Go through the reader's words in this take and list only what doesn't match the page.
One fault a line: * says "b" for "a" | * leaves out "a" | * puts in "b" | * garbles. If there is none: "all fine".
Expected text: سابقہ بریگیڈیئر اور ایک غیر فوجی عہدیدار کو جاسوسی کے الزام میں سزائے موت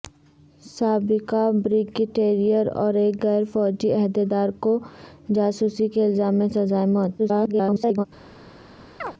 * garbles